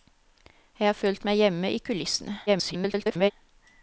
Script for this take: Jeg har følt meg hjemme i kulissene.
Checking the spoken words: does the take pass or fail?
fail